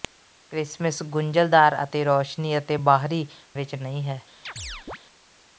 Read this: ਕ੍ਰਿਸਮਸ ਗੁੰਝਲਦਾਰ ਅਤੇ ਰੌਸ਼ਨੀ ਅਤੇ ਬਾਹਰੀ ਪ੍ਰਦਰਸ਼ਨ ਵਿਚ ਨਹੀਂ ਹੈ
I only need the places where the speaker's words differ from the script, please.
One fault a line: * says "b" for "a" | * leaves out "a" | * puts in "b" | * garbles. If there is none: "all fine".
* leaves out "ਪ੍ਰਦਰਸ਼ਨ"